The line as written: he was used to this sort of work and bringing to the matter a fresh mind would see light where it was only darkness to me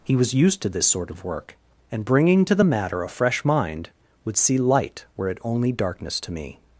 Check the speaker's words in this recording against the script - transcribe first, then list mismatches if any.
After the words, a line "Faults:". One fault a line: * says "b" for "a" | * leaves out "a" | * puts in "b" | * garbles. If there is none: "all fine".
he was used to this sort of work and bringing to the matter a fresh mind would see light where it only darkness to me
Faults:
* leaves out "was"